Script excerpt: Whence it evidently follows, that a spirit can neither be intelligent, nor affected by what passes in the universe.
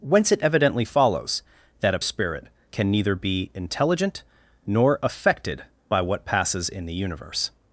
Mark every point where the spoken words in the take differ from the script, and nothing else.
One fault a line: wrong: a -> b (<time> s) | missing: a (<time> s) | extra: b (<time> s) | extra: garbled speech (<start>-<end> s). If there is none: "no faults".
no faults